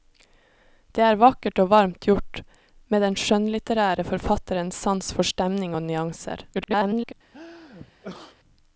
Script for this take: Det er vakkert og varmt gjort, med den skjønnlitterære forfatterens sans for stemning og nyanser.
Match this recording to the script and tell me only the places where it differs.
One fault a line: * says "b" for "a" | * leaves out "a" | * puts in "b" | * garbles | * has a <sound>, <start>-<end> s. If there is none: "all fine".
* garbles
* has a sneeze, 7.3-8.4 s